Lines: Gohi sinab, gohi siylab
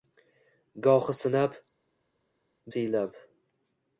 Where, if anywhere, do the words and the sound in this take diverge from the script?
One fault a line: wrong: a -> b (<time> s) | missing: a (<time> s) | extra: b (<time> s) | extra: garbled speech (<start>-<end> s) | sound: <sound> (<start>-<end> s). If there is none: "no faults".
missing: gohi (1.6 s)